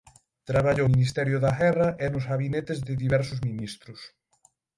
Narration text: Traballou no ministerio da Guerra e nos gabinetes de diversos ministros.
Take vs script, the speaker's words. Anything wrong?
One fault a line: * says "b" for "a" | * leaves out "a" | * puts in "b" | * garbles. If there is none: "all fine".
* leaves out "no"